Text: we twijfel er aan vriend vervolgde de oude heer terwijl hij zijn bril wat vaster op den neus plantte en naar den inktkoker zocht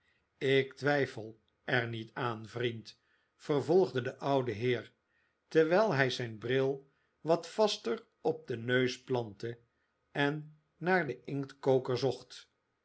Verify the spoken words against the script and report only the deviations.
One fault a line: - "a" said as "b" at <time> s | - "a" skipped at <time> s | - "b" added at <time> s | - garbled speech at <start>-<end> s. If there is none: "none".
- "we" said as "ik" at 0.4 s
- "niet" added at 1.9 s